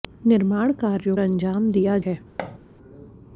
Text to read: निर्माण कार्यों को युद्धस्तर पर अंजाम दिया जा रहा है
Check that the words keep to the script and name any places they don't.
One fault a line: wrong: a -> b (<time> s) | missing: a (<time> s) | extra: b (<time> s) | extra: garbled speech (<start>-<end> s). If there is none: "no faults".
missing: को युद्धस्तर पर (1.1 s)
missing: जा रहा (2.0 s)